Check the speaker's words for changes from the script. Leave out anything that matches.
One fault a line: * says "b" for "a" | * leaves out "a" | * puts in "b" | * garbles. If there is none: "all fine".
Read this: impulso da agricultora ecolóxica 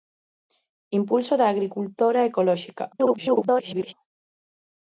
* garbles